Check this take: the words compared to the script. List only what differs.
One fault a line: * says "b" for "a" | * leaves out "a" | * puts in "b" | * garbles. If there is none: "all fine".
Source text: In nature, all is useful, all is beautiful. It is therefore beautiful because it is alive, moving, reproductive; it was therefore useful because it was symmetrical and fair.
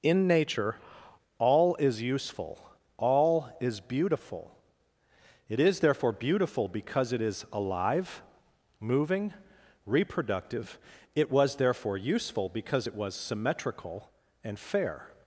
all fine